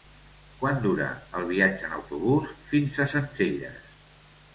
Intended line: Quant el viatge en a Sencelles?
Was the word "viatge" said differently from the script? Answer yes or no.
no